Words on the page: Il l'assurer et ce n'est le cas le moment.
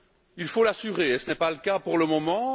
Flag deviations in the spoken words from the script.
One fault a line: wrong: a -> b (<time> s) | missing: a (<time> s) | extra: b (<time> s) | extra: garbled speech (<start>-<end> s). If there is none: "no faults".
extra: faut (0.5 s)
extra: pas (1.4 s)
extra: pour (1.8 s)